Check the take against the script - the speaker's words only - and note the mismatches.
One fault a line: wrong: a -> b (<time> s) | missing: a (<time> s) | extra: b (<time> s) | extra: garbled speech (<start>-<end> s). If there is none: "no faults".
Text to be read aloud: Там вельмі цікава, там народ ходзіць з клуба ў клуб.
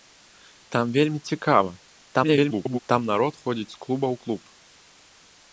extra: garbled speech (2.1-2.8 s)